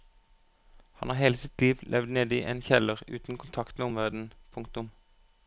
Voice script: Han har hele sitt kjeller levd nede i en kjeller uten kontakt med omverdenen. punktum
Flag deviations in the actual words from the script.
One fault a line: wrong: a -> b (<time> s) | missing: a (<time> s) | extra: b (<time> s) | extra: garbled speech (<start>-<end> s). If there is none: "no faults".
wrong: kjeller -> liv (1.6 s)